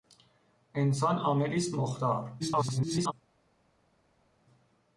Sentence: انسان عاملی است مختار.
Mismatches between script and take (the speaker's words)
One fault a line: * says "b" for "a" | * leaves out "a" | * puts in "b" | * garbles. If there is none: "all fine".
* garbles